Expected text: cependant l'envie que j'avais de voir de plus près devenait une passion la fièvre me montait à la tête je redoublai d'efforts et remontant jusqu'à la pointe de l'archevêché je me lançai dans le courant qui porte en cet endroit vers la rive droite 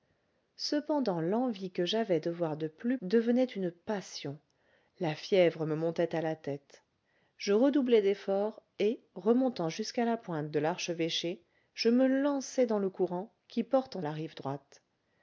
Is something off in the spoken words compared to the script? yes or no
yes